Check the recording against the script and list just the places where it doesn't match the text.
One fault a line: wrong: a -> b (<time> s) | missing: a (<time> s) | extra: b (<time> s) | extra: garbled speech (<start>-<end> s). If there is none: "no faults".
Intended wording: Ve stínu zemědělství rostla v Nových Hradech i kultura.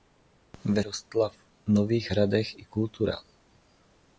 missing: stínu zemědělství (0.8 s)